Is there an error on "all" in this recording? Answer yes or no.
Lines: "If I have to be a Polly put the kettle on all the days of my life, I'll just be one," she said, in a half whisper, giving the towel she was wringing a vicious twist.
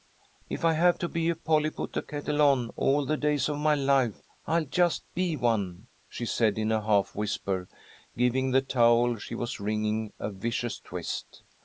no